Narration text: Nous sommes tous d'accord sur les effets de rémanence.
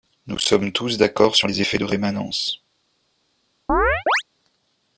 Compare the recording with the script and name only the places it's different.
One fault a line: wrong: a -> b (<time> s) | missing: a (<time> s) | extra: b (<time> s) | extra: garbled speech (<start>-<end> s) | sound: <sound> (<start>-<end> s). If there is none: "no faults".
sound: chirp (3.7-4.2 s)